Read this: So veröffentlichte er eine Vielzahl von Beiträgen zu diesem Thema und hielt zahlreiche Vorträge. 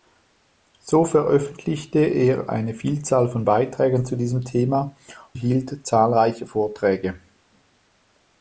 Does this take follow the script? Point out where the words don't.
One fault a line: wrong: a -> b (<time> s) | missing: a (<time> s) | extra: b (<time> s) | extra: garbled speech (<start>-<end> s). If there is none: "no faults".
missing: und (5.0 s)